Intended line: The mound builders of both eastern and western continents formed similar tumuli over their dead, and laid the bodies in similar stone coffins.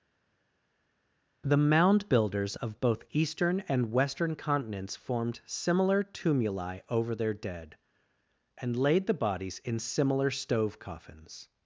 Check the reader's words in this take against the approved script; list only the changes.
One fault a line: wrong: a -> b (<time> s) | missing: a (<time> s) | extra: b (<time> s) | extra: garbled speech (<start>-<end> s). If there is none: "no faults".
wrong: stone -> stove (10.3 s)